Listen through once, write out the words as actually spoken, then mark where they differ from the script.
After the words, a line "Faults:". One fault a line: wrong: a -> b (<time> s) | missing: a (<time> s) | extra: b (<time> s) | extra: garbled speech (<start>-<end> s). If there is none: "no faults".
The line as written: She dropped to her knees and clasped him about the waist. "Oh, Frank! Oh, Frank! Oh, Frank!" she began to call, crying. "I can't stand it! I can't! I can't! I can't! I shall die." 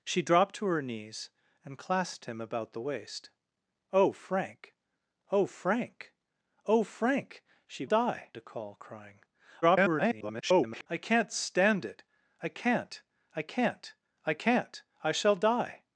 She dropped to her knees and clasped him about the waist. "Oh, Frank! Oh, Frank! Oh, Frank!" she die to call, crying. [garbled] "I can't stand it! I can't! I can't! I can't! I shall die."
Faults:
wrong: began -> die (7.8 s)
extra: garbled speech (9.6-10.9 s)